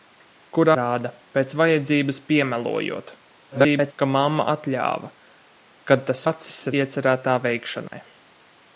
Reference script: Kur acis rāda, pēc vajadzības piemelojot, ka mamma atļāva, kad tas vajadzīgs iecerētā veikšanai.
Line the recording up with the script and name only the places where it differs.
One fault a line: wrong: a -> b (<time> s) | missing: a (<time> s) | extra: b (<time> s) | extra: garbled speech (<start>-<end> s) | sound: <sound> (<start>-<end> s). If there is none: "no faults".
missing: acis (0.7 s)
extra: garbled speech (3.5-3.9 s)
wrong: vajadzīgs -> acis (6.3 s)
sound: dropout (7.9-7.9 s)